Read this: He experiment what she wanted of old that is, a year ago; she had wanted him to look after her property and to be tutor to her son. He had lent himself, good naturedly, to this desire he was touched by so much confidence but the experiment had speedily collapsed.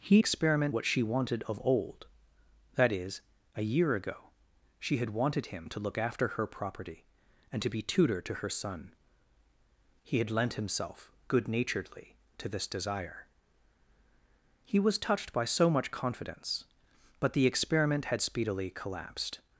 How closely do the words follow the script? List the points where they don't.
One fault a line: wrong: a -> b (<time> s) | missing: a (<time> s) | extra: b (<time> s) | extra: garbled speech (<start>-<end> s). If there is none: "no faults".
no faults